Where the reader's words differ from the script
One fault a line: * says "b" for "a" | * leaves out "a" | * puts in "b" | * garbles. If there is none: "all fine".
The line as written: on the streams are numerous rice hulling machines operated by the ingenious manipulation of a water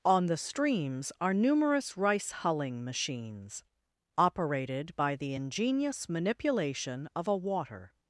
all fine